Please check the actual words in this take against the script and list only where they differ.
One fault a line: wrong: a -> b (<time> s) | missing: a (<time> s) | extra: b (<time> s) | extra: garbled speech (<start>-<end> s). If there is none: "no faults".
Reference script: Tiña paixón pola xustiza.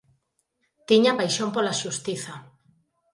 no faults